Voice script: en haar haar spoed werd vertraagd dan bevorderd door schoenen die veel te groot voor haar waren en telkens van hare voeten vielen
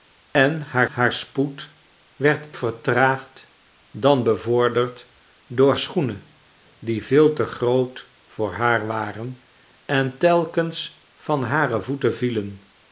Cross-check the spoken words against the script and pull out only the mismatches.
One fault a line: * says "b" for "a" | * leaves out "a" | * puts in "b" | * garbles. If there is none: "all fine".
all fine